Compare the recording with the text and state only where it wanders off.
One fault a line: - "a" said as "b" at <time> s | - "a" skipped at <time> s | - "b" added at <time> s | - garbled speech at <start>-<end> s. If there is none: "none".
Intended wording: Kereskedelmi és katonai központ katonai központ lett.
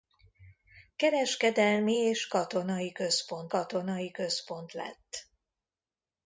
none